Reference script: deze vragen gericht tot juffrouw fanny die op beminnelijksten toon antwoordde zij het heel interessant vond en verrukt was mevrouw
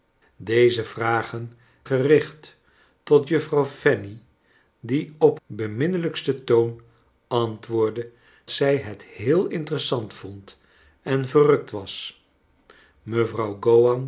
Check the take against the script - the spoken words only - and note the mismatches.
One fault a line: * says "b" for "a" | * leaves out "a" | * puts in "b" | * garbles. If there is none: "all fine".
all fine